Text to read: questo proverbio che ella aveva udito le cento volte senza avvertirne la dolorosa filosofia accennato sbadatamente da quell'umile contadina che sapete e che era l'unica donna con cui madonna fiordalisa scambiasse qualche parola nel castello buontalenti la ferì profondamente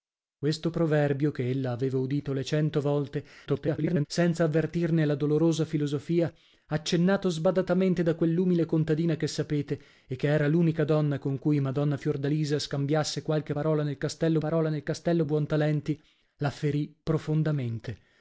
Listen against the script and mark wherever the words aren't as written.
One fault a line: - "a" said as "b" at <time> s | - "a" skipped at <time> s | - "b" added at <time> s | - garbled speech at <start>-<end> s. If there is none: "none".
- garbled speech at 3.5-4.1 s
- "parola nel castello" added at 14.4 s